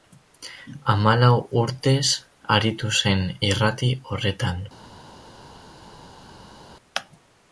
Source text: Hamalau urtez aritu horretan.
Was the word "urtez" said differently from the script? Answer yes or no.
no